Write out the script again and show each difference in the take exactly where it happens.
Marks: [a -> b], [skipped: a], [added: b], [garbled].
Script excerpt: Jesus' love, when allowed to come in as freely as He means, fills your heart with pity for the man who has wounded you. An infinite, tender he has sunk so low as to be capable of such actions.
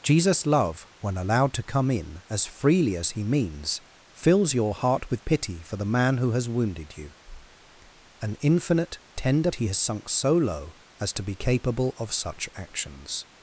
Jesus' love, when allowed to come in as freely as He means, fills your heart with pity for the man who has wounded you. An infinite, tender he has sunk so low as to be capable of such actions.